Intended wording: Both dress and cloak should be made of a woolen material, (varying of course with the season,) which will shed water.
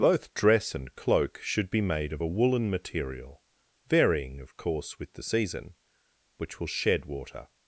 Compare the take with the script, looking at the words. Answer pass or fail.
pass